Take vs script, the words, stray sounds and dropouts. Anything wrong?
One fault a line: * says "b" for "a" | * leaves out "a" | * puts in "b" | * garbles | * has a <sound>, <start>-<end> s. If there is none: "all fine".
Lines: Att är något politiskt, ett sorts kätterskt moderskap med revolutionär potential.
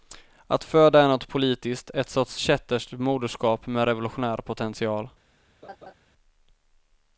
* puts in "föda"
* has a laugh, 5.6-5.9 s